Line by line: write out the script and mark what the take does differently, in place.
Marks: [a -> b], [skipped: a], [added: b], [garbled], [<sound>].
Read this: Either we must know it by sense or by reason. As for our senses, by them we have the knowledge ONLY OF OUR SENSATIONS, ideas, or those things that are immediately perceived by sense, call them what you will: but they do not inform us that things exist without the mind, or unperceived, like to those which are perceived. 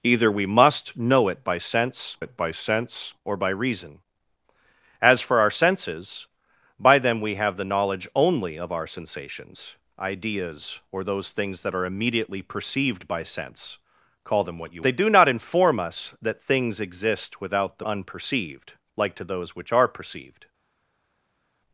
Either we must know it by sense [added: it by sense] or by reason. As for our senses, by them we have the knowledge ONLY OF OUR SENSATIONS, ideas, or those things that are immediately perceived by sense, call them what you [skipped: will: but] they do not inform us that things exist without the [skipped: mind, or] unperceived, like to those which are perceived.